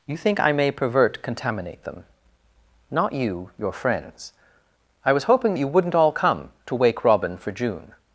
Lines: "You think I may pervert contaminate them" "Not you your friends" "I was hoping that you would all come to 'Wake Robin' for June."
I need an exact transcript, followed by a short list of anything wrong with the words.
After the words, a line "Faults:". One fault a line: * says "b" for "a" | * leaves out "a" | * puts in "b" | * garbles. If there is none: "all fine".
"You think I may pervert contaminate them" "Not you your friends" "I was hoping that you wouldn't all come to 'Wake Robin' for June."
Faults:
* says "wouldn't" for "would"